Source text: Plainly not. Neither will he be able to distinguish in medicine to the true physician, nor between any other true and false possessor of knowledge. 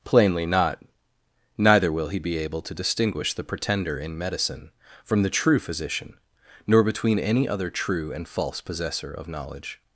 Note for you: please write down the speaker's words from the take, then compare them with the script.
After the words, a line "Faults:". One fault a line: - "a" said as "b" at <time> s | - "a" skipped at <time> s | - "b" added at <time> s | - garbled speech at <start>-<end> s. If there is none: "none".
Plainly not. Neither will he be able to distinguish the pretender in medicine from the true physician, nor between any other true and false possessor of knowledge.
Faults:
- "the pretender" added at 3.3 s
- "to" said as "from" at 5.0 s